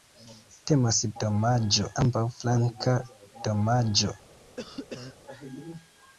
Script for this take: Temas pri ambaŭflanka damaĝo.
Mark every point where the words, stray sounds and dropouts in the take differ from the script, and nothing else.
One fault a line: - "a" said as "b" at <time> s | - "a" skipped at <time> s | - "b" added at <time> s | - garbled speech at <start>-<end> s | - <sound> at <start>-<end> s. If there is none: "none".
- "pri" said as "damaĝo" at 1.2 s
- cough at 4.6-5.2 s